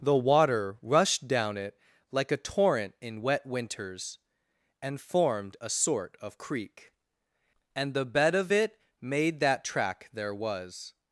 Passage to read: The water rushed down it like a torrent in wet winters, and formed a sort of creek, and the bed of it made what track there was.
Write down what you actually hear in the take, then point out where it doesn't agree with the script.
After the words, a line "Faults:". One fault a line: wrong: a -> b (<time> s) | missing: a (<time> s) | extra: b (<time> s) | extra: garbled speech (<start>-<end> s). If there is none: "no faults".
The water rushed down it like a torrent in wet winters, and formed a sort of creek, and the bed of it made that track there was.
Faults:
wrong: what -> that (9.4 s)